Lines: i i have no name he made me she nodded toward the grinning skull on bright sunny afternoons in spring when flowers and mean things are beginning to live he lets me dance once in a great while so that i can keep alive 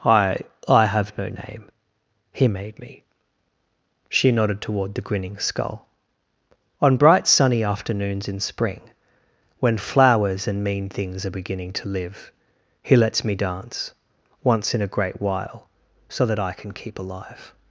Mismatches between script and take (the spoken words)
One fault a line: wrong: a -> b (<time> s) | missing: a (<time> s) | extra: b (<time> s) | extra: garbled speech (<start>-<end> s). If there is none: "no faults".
no faults